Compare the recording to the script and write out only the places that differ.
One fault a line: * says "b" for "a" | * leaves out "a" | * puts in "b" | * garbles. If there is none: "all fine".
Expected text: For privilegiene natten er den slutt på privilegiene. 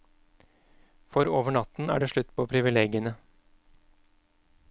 * says "over" for "privilegiene"
* says "det" for "den"